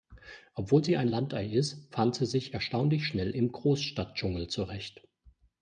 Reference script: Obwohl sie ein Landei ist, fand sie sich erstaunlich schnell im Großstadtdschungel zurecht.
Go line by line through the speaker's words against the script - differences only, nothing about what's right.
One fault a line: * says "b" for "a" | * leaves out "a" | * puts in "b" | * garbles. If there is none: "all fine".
all fine